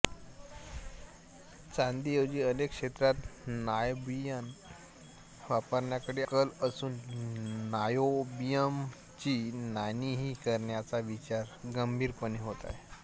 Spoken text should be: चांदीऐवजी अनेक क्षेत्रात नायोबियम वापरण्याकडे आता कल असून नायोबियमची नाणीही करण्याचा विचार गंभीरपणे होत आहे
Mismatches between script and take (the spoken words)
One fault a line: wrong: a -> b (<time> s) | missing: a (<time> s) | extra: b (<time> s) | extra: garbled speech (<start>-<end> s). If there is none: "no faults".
missing: आता (6.2 s)